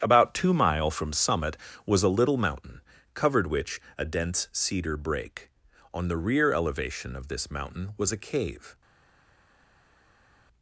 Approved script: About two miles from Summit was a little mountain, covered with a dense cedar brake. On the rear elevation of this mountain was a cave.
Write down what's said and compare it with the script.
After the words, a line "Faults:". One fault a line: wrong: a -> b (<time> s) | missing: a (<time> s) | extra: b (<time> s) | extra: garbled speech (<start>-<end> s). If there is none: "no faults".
About two mile from Summit was a little mountain, covered which a dense cedar brake. On the rear elevation of this mountain was a cave.
Faults:
wrong: miles -> mile (0.5 s)
wrong: with -> which (3.5 s)